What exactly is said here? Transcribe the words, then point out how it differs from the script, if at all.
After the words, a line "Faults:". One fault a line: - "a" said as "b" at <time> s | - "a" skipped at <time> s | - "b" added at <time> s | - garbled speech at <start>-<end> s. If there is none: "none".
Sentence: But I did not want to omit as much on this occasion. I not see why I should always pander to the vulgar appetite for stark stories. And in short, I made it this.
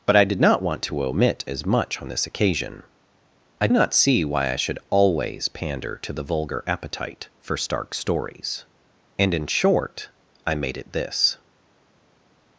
But I did not want to omit as much on this occasion. I not see why I should always pander to the vulgar appetite for stark stories. And in short, I made it this.
Faults:
none